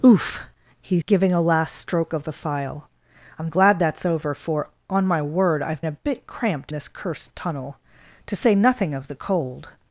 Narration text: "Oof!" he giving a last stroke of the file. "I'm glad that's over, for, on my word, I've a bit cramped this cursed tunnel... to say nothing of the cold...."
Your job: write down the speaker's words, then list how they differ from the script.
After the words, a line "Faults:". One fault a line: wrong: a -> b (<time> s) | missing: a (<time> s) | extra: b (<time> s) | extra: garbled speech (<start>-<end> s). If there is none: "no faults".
"Oof!" he giving a last stroke of the file. "I'm glad that's over, for, on my word, I've a bit cramped this cursed tunnel... to say nothing of the cold...."
Faults:
no faults